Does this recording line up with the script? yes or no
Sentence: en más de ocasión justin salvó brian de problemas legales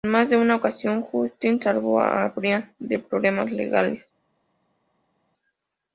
no